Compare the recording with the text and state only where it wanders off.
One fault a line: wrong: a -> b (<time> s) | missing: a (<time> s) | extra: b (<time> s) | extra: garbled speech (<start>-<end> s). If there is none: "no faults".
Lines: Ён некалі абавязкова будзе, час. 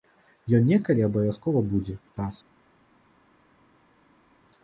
no faults